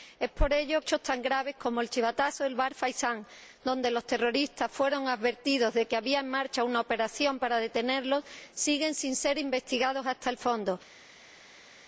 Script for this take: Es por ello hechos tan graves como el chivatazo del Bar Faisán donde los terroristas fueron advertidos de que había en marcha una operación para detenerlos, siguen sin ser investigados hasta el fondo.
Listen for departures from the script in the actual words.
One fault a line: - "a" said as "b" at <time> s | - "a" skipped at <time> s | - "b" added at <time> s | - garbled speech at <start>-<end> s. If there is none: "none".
none